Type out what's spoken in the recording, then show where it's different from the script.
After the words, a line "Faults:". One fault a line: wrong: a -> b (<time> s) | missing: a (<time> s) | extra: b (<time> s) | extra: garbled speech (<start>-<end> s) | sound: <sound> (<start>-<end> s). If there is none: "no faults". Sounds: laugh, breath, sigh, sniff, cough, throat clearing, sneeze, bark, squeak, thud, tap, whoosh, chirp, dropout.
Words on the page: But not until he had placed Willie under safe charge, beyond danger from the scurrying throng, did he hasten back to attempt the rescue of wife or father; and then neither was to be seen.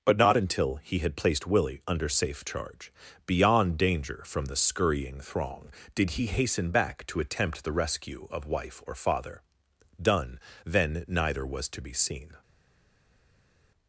But not until he had placed Willie under safe charge, beyond danger from the scurrying throng, did he hasten back to attempt the rescue of wife or father; done then neither was to be seen.
Faults:
wrong: and -> done (10.0 s)